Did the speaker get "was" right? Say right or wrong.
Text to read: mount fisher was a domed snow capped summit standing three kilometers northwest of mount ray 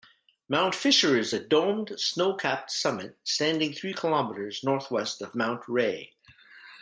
wrong